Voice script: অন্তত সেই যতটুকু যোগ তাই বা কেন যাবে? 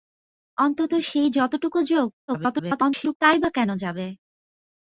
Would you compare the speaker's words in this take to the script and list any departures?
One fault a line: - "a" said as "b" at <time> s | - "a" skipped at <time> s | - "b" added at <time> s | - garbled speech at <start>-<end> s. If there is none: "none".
- garbled speech at 2.3-3.2 s